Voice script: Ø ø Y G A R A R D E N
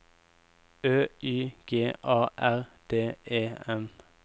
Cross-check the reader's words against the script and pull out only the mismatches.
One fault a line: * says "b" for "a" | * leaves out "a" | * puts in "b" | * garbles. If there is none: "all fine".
* leaves out "ø"
* leaves out "A R"